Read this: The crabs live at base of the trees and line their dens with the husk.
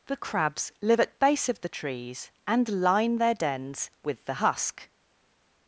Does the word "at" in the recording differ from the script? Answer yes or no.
no